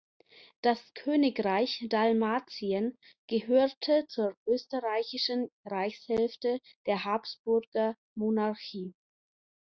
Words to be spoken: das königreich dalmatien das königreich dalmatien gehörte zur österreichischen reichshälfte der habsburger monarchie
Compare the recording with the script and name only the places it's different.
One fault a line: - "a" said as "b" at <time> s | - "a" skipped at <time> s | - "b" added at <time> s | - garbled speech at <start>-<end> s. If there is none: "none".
- "das königreich dalmatien" skipped at 3.0 s